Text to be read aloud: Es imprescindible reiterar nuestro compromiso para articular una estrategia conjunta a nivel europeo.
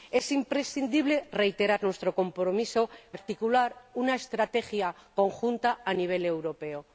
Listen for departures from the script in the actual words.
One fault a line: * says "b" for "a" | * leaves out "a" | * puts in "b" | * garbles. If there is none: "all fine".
* leaves out "para"